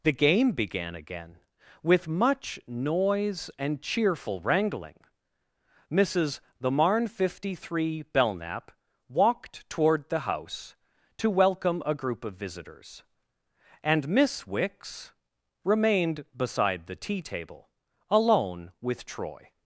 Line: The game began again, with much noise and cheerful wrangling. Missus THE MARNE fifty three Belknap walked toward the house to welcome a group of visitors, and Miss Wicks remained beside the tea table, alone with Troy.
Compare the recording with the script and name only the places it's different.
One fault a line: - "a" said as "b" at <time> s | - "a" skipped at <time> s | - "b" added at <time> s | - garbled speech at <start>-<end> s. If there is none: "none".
none